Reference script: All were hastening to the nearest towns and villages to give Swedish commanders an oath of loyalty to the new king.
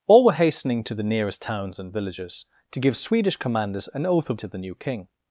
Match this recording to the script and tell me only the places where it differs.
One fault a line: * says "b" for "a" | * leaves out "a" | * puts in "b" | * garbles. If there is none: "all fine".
* leaves out "loyalty"